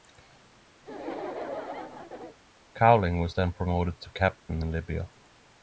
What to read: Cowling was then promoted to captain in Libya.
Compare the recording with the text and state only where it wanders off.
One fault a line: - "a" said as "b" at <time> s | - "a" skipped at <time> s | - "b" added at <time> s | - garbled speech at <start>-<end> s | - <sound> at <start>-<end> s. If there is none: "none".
- laugh at 0.8-2.4 s